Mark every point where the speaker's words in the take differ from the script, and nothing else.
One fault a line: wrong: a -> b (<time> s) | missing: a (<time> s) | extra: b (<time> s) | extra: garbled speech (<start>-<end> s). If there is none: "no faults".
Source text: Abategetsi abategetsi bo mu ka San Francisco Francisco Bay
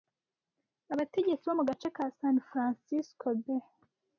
missing: abategetsi (1.4 s)
extra: gace (1.7 s)
missing: Francisco (3.3 s)